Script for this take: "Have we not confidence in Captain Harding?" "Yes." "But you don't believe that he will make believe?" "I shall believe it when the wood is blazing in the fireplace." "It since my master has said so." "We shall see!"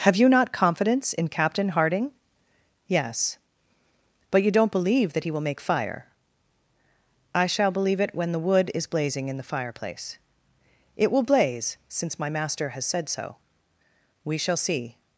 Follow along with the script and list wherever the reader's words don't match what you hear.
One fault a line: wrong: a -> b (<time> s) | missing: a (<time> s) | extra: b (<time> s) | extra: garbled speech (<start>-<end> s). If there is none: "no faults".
wrong: we -> you (0.1 s)
wrong: believe -> fire (5.6 s)
extra: will blaze (11.1 s)